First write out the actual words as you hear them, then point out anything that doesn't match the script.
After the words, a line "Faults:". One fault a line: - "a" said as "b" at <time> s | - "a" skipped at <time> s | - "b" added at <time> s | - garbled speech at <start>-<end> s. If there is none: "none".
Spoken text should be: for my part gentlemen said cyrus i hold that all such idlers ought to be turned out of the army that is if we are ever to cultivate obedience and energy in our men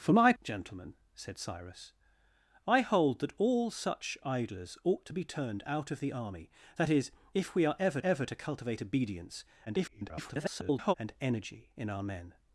for my gentlemen said cyrus i hold that all such idlers ought to be turned out of the army that is if we are ever ever to cultivate obedience [garbled] and energy in our men
Faults:
- "part" skipped at 0.3 s
- "ever" added at 8.0 s
- garbled speech at 9.7-10.9 s